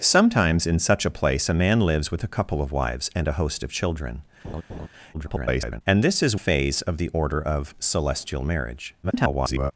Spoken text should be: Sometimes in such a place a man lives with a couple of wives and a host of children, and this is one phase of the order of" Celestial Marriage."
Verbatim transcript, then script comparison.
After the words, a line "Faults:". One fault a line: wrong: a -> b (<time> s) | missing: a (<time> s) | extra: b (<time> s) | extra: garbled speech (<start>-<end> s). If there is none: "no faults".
Sometimes in such a place a man lives with a couple of wives and a host of children, [garbled] and this is phase of the order of" Celestial Marriage." [garbled]
Faults:
extra: garbled speech (5.1-5.8 s)
missing: one (6.4 s)
extra: garbled speech (9.0-9.7 s)